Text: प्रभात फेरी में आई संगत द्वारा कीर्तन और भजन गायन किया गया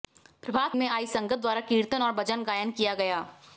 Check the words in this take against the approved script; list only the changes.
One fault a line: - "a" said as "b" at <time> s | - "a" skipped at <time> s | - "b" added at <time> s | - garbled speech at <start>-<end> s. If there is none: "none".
- "फेरी" skipped at 0.8 s